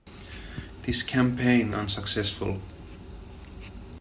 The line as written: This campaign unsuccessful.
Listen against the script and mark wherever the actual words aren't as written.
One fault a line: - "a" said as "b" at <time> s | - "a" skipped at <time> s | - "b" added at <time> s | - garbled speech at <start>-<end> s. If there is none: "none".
none